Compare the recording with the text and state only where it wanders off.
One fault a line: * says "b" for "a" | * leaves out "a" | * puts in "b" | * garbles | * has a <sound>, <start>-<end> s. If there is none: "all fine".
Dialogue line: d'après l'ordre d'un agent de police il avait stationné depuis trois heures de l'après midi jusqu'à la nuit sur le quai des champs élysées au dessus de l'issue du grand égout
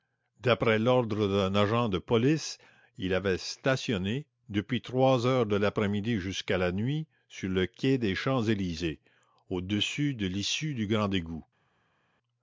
all fine